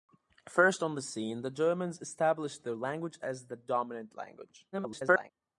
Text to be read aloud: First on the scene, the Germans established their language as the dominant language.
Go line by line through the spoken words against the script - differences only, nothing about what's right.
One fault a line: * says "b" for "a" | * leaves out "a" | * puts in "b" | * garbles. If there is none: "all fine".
* garbles